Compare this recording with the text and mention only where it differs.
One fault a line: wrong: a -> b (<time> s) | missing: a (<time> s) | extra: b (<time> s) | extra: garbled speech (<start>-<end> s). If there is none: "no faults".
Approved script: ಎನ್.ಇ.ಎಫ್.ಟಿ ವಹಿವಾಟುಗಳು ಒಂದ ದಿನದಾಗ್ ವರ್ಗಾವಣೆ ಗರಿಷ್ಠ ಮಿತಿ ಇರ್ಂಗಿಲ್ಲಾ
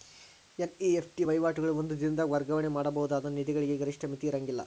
extra: ಮಾಡಬಹುದಾದ ನಿಧಿಗಳಿಗೆ (2.7 s)